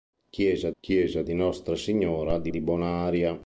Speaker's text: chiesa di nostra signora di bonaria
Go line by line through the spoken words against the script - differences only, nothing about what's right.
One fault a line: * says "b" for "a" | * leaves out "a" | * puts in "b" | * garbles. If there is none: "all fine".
* puts in "chiesa"
* puts in "di"